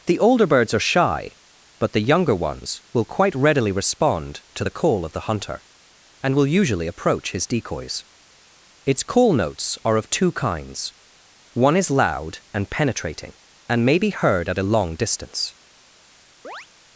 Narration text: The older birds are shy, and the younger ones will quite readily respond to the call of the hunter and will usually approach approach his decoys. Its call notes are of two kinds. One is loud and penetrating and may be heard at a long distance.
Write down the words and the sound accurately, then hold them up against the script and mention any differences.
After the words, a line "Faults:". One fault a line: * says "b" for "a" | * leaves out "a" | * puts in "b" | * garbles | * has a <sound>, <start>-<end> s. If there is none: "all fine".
The older birds are shy, but the younger ones will quite readily respond to the call of the hunter and will usually approach his decoys. Its call notes are of two kinds. One is loud and penetrating and may be heard at a long distance.
Faults:
* says "but" for "and"
* leaves out "approach"
* has a chirp, 16.4-16.7 s